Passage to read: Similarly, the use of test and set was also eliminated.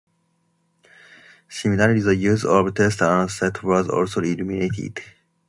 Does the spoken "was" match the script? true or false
true